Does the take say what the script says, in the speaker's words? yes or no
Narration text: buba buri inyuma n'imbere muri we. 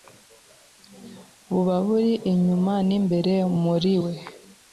yes